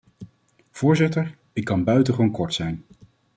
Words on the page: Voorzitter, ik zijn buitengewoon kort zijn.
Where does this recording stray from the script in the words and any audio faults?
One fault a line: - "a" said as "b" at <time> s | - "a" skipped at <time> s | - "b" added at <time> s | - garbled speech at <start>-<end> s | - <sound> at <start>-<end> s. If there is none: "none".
- "zijn" said as "kan" at 1.6 s